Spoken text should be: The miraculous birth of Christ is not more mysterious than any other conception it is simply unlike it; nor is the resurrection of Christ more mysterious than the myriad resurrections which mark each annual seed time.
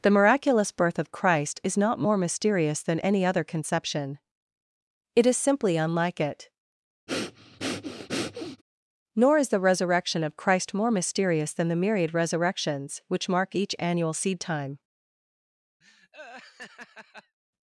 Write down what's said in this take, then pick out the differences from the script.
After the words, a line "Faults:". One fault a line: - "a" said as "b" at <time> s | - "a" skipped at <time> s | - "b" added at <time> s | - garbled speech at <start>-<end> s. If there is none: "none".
The miraculous birth of Christ is not more mysterious than any other conception it is simply unlike it; nor is the resurrection of Christ more mysterious than the myriad resurrections which mark each annual seed time.
Faults:
none